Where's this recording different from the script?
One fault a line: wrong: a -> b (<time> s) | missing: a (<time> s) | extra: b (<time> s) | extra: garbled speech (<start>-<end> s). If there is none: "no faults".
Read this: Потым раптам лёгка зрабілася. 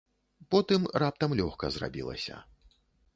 no faults